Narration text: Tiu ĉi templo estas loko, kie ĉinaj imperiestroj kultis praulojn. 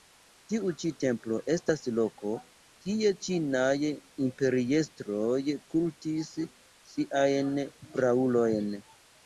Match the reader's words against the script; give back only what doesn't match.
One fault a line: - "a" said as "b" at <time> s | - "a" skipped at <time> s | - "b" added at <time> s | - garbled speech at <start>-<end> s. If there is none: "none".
- "siajn" added at 7.0 s